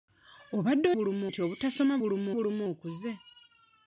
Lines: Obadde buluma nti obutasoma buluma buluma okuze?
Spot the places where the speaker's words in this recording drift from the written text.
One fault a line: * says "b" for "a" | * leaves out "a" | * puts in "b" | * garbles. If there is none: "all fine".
all fine